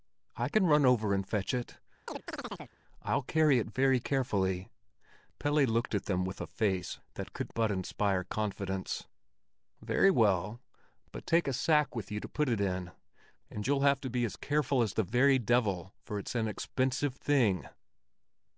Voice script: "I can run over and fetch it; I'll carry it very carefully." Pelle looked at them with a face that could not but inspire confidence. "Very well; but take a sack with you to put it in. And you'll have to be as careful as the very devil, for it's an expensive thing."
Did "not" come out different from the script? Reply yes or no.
yes